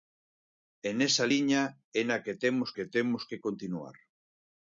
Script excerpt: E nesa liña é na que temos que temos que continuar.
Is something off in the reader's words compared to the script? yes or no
no